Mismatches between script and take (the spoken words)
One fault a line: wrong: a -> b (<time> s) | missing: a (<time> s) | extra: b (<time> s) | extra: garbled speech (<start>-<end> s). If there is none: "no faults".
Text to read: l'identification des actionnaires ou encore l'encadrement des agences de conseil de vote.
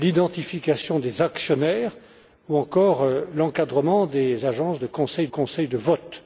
extra: conseil (5.3 s)